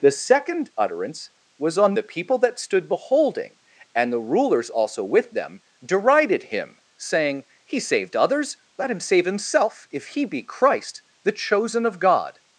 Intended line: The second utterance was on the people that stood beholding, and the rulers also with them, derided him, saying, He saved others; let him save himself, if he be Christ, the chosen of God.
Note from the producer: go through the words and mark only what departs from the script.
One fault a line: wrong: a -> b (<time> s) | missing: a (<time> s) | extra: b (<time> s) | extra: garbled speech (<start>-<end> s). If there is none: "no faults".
no faults